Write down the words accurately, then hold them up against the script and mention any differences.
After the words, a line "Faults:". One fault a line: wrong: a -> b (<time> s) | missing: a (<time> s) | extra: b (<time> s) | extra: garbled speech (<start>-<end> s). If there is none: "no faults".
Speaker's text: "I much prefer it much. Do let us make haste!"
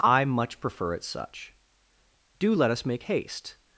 "I much prefer it such. Do let us make haste!"
Faults:
wrong: much -> such (1.0 s)